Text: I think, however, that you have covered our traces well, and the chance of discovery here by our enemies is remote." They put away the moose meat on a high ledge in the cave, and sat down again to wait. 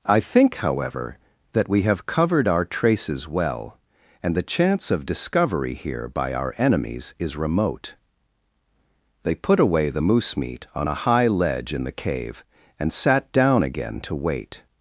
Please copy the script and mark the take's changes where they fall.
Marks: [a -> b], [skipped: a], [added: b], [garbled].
I think, however, that [you -> we] have covered our traces well, and the chance of discovery here by our enemies is remote." They put away the moose meat on a high ledge in the cave, and sat down again to wait.